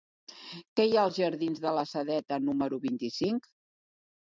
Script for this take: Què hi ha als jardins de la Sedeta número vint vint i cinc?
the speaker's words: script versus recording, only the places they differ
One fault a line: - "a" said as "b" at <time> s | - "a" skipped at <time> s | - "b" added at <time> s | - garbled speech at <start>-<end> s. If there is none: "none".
- "vint" skipped at 3.0 s